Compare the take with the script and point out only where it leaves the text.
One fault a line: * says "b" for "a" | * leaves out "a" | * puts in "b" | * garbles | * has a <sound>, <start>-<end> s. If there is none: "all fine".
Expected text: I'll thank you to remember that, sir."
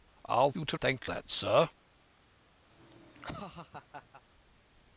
* leaves out "thank"
* says "thank" for "remember"
* has a laugh, 2.7-4.2 s